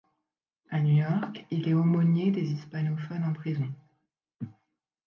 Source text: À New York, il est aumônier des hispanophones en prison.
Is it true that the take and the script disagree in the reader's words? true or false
false